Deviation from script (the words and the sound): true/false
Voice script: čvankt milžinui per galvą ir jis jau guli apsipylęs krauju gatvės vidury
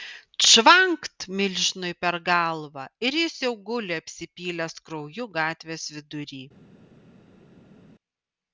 false